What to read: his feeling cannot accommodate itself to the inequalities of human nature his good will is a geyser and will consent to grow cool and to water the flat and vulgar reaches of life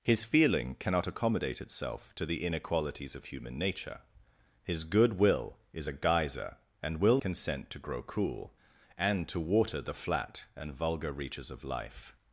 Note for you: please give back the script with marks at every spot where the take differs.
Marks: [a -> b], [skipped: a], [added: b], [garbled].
his feeling cannot accommodate itself to the inequalities of human nature his good will is a geyser and will consent to grow cool and to water the flat and vulgar reaches of life